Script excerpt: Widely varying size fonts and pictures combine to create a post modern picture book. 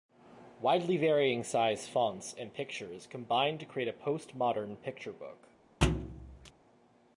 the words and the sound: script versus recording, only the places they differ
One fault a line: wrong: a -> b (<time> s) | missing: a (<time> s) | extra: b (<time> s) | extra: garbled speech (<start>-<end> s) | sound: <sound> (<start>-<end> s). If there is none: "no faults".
sound: thud (5.8-6.5 s)